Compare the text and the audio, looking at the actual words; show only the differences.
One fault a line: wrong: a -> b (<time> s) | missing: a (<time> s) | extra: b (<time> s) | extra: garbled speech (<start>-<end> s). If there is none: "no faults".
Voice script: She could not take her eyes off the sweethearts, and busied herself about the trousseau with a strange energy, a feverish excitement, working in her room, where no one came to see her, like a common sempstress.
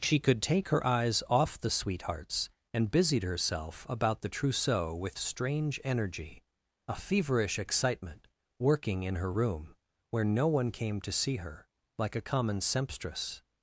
missing: not (0.4 s)
missing: a (5.2 s)